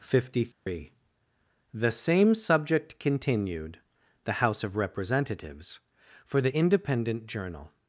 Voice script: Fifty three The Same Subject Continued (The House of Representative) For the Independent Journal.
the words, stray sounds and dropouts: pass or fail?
fail